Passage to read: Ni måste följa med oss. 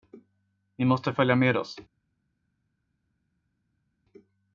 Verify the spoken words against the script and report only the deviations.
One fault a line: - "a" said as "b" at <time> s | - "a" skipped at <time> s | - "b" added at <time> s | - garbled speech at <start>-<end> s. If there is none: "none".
none